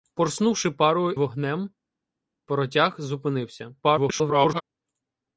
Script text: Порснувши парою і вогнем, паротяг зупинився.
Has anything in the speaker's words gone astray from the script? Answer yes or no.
yes